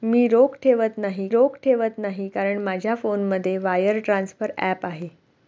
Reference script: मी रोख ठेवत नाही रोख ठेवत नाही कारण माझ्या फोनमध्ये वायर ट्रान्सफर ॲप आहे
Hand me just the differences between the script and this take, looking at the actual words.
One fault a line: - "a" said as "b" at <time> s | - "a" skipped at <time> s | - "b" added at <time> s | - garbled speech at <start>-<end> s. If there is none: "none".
none